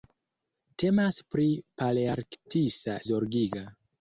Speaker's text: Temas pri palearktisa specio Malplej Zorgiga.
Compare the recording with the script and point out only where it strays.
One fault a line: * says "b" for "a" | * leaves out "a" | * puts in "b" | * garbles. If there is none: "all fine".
* leaves out "specio Malplej"